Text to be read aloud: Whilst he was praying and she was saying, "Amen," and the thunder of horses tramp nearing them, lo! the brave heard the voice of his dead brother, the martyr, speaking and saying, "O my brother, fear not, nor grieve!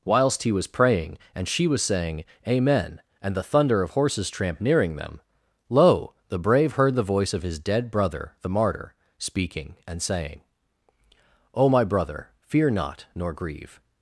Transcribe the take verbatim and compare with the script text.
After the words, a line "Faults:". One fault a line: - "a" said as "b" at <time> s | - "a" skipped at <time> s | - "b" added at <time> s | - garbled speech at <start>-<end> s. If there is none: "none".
Whilst he was praying and she was saying, "Amen," and the thunder of horses tramp nearing them, lo! the brave heard the voice of his dead brother, the martyr, speaking and saying, "O my brother, fear not, nor grieve!
Faults:
none